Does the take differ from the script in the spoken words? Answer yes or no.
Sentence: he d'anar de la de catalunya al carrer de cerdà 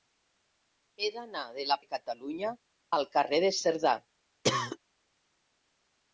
no